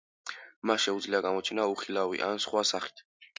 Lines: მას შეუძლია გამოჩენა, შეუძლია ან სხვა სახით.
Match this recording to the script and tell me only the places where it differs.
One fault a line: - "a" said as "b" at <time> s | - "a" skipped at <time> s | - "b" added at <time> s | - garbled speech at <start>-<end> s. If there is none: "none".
- "შეუძლია" said as "უხილავი" at 1.7 s